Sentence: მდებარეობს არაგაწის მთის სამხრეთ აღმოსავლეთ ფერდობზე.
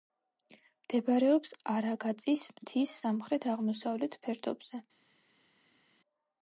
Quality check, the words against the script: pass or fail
pass